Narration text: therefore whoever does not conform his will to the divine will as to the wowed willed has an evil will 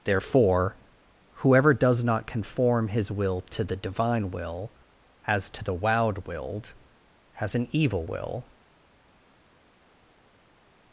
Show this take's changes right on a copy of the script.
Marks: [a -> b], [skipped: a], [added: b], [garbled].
therefore whoever does not conform his will to the divine will as to the wowed willed has an evil will